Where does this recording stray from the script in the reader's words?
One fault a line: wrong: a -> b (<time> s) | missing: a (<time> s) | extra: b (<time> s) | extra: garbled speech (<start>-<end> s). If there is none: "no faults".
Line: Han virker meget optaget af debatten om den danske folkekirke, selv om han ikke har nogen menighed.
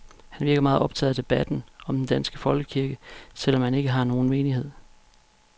no faults